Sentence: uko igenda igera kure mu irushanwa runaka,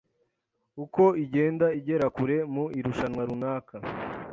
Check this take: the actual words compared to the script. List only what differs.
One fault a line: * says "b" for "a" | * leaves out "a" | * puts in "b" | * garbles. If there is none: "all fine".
all fine